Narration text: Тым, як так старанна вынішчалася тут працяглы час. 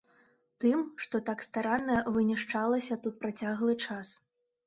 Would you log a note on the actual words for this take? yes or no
yes